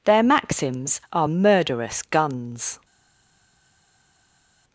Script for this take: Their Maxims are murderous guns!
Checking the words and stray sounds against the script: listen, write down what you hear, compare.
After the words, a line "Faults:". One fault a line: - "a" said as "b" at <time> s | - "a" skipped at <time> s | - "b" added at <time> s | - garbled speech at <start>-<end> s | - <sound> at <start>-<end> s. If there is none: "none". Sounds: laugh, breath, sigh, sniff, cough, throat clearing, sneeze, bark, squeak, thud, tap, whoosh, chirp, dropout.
Their Maxims are murderous guns!
Faults:
none